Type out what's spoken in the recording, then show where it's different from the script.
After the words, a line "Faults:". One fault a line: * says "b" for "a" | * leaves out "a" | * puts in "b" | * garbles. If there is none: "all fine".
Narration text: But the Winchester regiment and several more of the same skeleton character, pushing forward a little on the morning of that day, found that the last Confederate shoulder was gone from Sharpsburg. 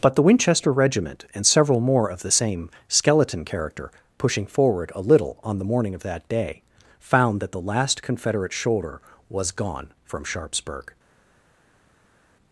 But the Winchester regiment and several more of the same skeleton character, pushing forward a little on the morning of that day, found that the last Confederate shoulder was gone from Sharpsburg.
Faults:
all fine